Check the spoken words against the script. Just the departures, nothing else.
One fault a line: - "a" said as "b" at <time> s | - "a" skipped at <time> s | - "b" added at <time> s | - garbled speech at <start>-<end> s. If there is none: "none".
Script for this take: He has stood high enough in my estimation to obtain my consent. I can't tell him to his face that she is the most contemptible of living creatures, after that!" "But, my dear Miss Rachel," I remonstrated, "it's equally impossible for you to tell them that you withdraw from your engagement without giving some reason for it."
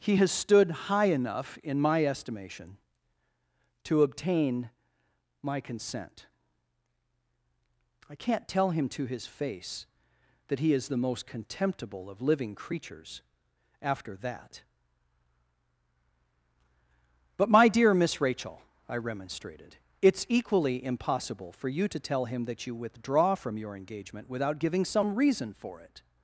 - "she" said as "he" at 10.6 s
- "them" said as "him" at 22.2 s